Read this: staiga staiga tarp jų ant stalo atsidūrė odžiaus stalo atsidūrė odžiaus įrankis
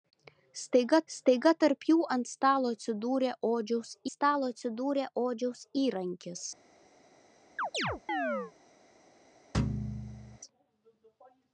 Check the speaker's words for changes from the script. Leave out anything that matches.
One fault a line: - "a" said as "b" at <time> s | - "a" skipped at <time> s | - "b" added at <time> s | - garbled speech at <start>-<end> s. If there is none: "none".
none